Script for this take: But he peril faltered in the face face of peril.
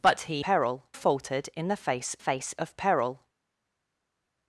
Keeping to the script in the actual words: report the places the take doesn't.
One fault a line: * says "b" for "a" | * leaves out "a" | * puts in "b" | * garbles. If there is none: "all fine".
all fine